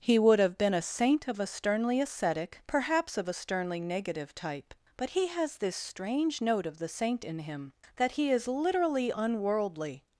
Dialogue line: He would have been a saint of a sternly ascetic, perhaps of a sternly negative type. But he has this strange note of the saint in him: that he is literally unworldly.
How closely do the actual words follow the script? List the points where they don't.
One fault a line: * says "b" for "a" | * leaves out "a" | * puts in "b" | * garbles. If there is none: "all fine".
all fine